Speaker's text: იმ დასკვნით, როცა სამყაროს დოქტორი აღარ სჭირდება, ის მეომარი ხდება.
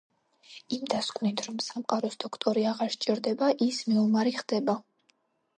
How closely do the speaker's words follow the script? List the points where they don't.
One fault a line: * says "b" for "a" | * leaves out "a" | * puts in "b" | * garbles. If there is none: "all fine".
* says "რომ" for "როცა"